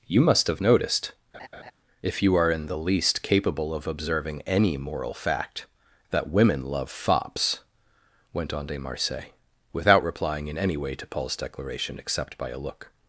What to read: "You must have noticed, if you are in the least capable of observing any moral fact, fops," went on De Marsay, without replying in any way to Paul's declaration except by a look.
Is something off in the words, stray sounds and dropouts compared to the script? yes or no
yes